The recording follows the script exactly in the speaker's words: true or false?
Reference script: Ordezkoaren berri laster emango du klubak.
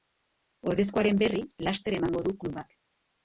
true